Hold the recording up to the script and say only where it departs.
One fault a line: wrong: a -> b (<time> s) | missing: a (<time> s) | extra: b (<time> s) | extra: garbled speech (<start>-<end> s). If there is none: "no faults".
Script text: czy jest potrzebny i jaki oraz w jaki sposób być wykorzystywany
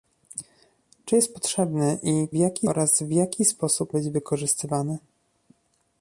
no faults